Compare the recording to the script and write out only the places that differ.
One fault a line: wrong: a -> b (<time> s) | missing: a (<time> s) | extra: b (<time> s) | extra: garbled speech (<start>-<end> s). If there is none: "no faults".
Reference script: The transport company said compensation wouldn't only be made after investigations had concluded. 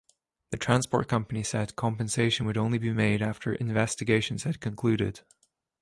wrong: wouldn't -> would (2.4 s)